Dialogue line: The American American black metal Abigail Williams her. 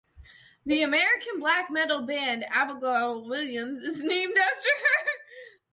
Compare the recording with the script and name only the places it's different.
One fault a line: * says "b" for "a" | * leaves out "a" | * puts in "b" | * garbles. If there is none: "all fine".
* leaves out "American"
* puts in "band"
* puts in "is named after"